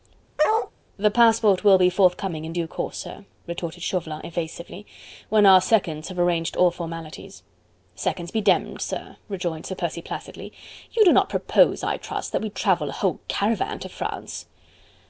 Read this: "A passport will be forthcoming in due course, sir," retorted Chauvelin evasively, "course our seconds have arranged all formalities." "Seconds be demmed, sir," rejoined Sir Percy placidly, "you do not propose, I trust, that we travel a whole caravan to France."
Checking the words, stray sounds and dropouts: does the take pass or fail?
fail